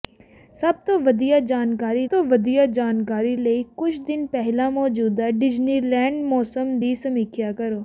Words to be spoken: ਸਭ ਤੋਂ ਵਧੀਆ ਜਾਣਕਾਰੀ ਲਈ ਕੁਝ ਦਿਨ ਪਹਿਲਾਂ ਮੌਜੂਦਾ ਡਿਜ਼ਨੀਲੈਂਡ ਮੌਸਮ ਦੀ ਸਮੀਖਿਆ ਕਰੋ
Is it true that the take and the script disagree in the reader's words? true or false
true